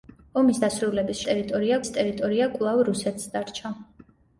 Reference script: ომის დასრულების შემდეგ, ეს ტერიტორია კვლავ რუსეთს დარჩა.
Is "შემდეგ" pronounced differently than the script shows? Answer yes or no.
yes